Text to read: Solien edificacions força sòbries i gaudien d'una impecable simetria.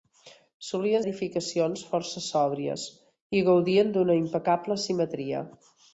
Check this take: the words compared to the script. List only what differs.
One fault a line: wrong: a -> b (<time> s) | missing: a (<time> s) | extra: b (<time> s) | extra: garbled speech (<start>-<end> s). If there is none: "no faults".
no faults